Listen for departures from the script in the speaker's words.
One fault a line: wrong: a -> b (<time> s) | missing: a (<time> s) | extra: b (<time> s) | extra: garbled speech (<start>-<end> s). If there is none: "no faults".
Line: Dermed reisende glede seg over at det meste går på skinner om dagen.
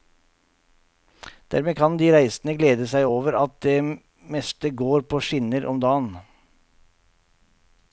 extra: kan de (1.8 s)